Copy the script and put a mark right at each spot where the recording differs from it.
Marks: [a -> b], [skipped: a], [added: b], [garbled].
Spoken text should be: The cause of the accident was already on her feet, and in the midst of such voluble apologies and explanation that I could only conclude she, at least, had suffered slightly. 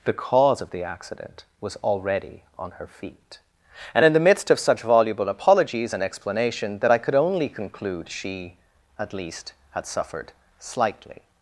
The cause of the accident was already on her feet, and in the midst of such voluble apologies and explanation that I could only conclude she, at least, had suffered slightly.